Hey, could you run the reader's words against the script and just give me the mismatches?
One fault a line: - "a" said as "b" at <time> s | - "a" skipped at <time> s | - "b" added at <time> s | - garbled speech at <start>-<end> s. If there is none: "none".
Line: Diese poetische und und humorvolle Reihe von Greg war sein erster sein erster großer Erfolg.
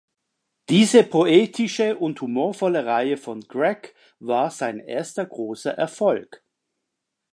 - "und" skipped at 2.2 s
- "sein erster" skipped at 5.2 s